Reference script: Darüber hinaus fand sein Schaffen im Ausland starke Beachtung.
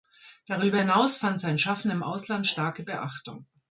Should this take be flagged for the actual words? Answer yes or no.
no